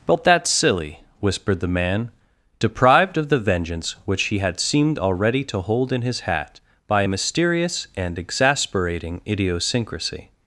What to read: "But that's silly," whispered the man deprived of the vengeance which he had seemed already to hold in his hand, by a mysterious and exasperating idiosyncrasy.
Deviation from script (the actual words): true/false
true